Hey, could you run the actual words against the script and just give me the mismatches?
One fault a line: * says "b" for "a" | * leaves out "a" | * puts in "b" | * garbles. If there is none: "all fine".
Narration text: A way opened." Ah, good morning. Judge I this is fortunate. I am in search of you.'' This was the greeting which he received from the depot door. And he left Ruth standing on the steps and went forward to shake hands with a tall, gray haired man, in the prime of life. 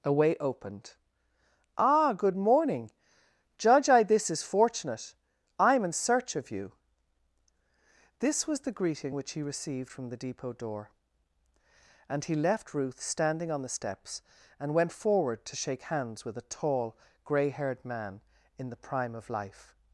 all fine